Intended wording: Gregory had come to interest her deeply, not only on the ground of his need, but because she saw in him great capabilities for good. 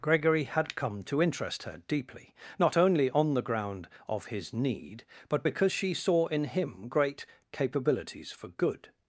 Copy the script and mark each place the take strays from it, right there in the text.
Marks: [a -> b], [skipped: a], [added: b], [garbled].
Gregory had come to interest her deeply, not only on the ground of his need, but because she saw in him great capabilities for good.